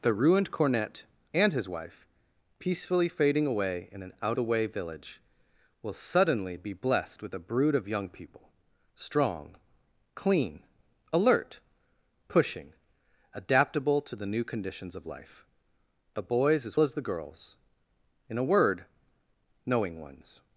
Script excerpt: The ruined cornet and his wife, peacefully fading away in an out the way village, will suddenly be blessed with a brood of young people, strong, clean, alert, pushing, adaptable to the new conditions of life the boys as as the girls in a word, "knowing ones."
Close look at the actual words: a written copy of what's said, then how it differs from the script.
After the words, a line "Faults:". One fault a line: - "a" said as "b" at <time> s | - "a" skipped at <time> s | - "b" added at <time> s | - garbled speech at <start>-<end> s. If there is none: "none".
The ruined cornet and his wife, peacefully fading away in an out the way village, will suddenly be blessed with a brood of young people, strong, clean, alert, pushing, adaptable to the new conditions of life the boys as as the girls in a word, "knowing ones."
Faults:
none